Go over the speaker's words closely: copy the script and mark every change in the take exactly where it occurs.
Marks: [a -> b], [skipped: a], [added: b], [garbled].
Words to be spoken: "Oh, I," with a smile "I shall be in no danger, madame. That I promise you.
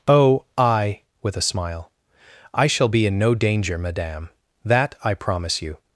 "Oh, I," with a smile "I shall be in no danger, madame. That I promise you.